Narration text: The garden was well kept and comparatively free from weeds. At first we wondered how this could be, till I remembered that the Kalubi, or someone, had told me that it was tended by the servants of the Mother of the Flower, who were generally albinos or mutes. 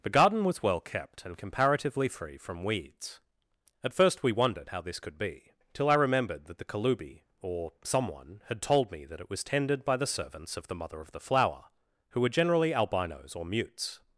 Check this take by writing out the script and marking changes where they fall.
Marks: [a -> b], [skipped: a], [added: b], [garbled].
The garden was well kept and comparatively free from weeds. At first we wondered how this could be, till I remembered that the Kalubi, or someone, had told me that it was tended by the servants of the Mother of the Flower, who were generally albinos or mutes.